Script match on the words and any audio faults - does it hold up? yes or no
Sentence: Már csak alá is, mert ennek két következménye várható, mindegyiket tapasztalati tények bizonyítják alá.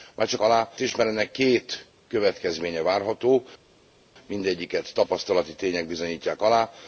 yes